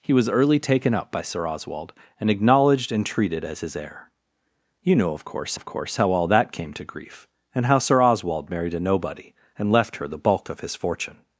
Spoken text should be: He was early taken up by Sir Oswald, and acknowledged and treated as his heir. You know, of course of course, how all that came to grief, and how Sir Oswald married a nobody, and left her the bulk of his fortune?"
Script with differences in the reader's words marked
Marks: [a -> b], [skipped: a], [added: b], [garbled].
He was early taken up by Sir Oswald, and acknowledged and treated as his heir. You know, of course of course, how all that came to grief, and how Sir Oswald married a nobody, and left her the bulk of his fortune?"